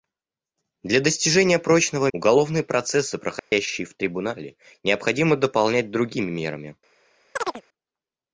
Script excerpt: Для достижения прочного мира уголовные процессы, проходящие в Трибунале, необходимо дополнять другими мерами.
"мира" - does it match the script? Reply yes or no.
no